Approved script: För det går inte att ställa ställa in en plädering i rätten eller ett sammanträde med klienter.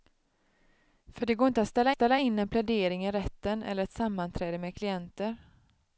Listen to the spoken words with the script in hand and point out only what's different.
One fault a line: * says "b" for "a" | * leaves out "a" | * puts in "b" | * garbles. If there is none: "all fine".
all fine